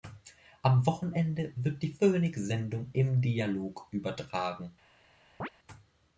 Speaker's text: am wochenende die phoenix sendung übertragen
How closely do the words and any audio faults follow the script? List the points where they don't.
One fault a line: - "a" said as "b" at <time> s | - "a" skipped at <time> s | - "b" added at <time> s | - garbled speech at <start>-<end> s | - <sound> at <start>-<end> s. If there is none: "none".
- "wird" added at 1.6 s
- "im dialog" added at 2.9 s
- chirp at 5.4-5.5 s